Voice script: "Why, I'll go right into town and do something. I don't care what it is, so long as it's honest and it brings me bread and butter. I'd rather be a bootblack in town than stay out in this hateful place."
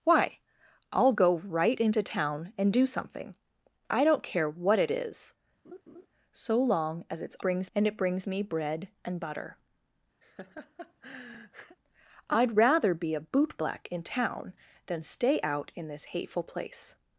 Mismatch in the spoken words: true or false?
true